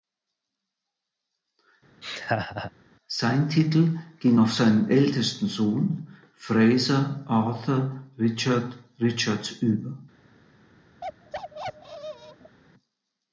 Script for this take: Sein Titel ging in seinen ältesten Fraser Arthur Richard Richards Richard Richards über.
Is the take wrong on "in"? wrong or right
wrong